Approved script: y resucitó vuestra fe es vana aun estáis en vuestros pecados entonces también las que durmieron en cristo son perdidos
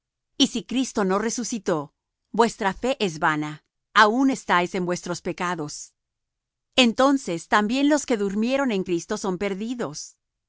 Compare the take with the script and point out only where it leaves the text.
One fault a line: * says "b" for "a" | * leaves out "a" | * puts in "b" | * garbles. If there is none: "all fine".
* puts in "si cristo no"
* says "los" for "las"